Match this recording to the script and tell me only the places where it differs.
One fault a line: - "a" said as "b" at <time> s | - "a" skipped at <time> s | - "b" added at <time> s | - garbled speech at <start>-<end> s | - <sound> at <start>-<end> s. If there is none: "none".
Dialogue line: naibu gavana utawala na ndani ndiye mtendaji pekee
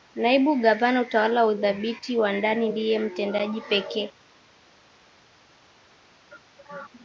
- "udhibiti wa" added at 1.4 s